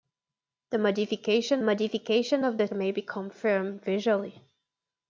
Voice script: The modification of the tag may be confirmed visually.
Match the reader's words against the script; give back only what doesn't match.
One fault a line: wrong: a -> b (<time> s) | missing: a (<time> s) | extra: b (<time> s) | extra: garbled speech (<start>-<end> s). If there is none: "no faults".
extra: modification (1.6 s)
missing: tag (2.7 s)